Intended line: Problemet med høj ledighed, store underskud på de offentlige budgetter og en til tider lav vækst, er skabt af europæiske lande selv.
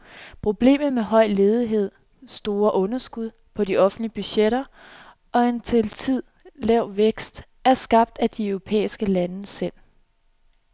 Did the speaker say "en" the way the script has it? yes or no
yes